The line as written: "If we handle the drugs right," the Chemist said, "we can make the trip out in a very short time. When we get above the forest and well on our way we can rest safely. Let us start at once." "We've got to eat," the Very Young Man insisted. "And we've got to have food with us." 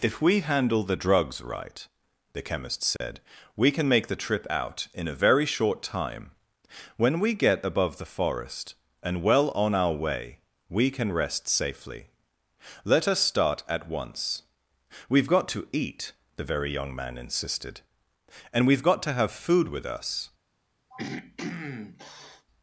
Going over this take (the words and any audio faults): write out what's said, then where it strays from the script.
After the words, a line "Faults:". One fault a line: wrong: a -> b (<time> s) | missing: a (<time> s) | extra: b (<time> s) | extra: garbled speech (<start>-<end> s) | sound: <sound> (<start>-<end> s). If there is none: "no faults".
"If we handle the drugs right," the Chemist said, "we can make the trip out in a very short time. When we get above the forest and well on our way we can rest safely. Let us start at once." "We've got to eat," the Very Young Man insisted. "And we've got to have food with us."
Faults:
sound: dropout (3.0-3.0 s)
sound: throat clearing (20.9-22.5 s)